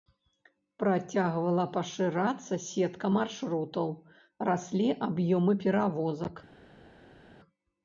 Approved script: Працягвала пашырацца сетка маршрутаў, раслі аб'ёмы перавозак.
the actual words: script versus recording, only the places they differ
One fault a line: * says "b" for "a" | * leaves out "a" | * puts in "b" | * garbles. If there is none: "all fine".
all fine